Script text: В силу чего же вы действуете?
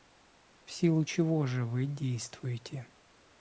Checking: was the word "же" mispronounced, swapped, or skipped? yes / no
no